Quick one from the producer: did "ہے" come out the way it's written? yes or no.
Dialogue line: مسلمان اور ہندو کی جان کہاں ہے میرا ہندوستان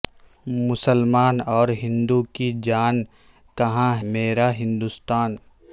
no